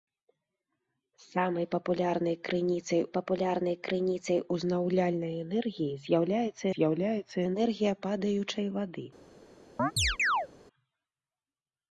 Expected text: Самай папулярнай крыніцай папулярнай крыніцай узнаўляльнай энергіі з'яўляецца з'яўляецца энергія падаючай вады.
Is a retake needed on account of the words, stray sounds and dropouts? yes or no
yes